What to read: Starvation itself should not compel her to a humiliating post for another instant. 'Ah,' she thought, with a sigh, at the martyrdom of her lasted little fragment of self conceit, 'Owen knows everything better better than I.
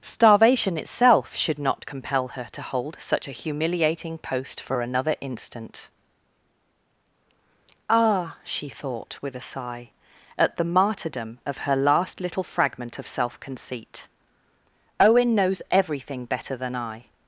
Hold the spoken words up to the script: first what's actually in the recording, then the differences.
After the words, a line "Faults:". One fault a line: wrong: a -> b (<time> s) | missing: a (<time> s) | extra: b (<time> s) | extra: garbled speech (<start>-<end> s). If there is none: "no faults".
Starvation itself should not compel her to hold such a humiliating post for another instant. 'Ah,' she thought, with a sigh, at the martyrdom of her last little fragment of self conceit, 'Owen knows everything better than I.
Faults:
extra: hold such (2.6 s)
wrong: lasted -> last (11.8 s)
missing: better (16.5 s)